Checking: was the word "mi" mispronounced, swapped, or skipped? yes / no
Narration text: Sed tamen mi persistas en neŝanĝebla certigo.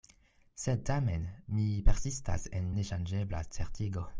no